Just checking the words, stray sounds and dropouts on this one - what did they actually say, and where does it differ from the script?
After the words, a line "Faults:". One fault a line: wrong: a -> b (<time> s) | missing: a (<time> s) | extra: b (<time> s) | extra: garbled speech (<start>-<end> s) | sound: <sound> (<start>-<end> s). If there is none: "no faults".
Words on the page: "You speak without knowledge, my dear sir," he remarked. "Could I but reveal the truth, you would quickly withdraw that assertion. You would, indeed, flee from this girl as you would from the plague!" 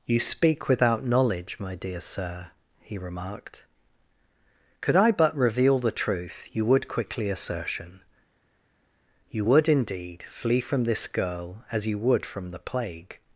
"You speak without knowledge, my dear sir," he remarked. "Could I but reveal the truth, you would quickly assertion. You would, indeed, flee from this girl as you would from the plague!"
Faults:
missing: withdraw that (7.3 s)